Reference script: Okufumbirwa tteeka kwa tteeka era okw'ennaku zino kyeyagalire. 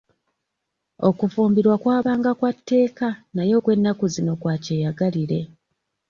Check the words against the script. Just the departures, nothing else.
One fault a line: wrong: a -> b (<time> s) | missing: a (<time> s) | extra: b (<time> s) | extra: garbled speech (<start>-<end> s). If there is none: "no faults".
wrong: tteeka -> kwabanga (1.8 s)
wrong: era -> naye (3.3 s)
extra: kwa (4.4 s)